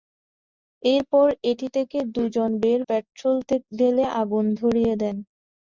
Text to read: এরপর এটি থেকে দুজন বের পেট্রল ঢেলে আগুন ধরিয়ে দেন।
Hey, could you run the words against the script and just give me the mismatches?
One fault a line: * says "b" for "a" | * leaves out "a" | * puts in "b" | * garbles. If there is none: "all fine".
all fine